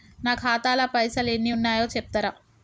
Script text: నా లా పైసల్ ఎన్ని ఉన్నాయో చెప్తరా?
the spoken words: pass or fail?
fail